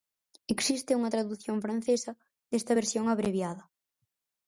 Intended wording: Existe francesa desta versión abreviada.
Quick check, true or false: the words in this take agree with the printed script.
false